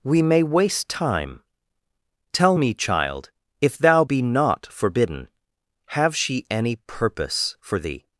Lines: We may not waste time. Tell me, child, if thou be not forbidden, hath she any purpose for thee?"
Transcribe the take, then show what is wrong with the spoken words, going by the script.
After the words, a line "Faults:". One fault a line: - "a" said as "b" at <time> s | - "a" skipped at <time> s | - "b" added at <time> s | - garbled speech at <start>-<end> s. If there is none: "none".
We may waste time. Tell me, child, if thou be not forbidden, have she any purpose for thee?"
Faults:
- "not" skipped at 0.4 s
- "hath" said as "have" at 5.9 s